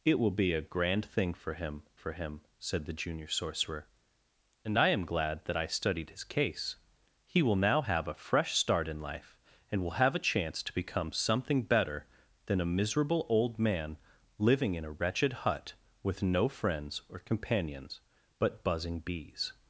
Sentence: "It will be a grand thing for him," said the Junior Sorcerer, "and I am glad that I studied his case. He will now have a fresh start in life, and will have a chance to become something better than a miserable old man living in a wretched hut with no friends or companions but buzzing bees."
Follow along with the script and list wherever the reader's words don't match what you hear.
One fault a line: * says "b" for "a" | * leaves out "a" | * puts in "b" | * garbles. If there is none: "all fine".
* puts in "for him"